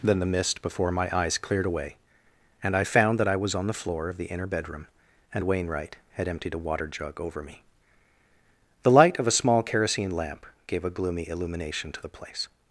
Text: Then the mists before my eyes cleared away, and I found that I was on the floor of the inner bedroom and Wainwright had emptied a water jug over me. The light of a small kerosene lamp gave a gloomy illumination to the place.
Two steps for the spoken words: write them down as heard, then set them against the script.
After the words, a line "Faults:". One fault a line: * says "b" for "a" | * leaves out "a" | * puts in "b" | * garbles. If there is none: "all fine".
Then the mist before my eyes cleared away, and I found that I was on the floor of the inner bedroom and Wainwright had emptied a water jug over me. The light of a small kerosene lamp gave a gloomy illumination to the place.
Faults:
* says "mist" for "mists"